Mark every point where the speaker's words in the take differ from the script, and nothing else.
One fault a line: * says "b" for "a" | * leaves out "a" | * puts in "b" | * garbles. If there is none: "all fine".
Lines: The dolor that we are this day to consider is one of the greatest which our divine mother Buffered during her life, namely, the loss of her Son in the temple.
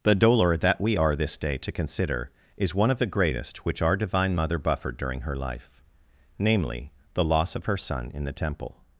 all fine